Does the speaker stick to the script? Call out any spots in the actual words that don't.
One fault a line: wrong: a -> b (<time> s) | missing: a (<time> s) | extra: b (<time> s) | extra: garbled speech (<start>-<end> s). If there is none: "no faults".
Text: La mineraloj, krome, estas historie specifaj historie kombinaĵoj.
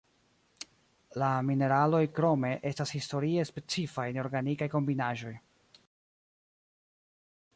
wrong: historie -> neorganikaj (4.2 s)